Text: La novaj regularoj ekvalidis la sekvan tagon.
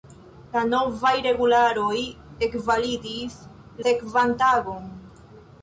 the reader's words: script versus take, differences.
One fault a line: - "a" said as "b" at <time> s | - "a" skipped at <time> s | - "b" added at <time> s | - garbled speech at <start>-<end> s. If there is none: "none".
- "la" skipped at 3.4 s